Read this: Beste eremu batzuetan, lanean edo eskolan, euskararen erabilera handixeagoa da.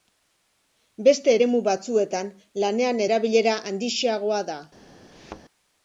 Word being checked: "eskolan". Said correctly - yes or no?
no